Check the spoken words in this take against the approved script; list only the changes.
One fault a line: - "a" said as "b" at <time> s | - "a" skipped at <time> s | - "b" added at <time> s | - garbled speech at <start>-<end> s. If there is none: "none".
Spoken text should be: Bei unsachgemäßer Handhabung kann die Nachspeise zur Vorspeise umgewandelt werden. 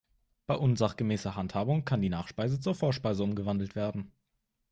none